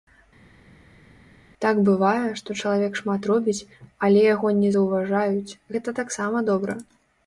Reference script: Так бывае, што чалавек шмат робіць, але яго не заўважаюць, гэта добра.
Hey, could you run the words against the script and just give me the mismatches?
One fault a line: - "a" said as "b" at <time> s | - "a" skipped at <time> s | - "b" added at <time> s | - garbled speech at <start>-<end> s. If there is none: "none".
- "таксама" added at 6.0 s